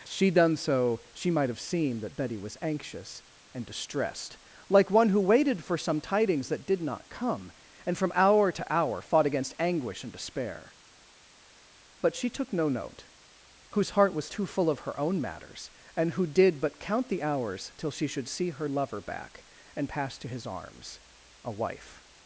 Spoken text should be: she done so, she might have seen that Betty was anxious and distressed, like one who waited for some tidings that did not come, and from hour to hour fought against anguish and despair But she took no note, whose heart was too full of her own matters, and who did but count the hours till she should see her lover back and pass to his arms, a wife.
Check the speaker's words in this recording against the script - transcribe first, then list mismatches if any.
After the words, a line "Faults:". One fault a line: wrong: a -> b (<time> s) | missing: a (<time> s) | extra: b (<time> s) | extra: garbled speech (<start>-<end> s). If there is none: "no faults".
she done so, she might have seen that Betty was anxious and distressed, like one who waited for some tidings that did not come, and from hour to hour fought against anguish and despair But she took no note, whose heart was too full of her own matters, and who did but count the hours till she should see her lover back and pass to his arms, a wife.
Faults:
no faults